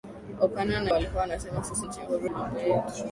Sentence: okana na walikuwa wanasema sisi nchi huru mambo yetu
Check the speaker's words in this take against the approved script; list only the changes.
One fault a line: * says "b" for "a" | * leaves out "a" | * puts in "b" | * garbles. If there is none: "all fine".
all fine